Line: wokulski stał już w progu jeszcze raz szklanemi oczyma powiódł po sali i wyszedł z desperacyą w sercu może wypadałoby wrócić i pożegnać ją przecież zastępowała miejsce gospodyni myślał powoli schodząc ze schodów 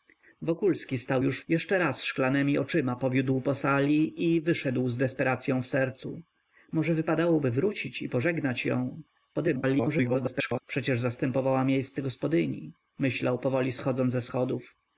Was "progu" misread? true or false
true